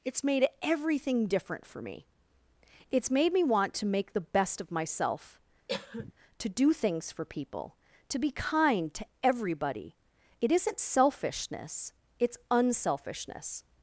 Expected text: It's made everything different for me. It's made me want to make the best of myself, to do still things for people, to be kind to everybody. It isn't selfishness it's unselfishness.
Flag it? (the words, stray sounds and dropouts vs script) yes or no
yes